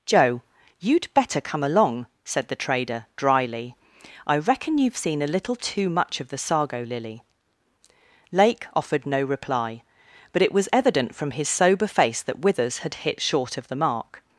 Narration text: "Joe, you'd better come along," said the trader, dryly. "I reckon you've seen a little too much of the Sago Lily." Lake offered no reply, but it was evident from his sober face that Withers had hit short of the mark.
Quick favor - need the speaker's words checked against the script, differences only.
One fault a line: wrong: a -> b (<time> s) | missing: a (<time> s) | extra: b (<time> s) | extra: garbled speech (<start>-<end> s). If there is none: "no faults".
no faults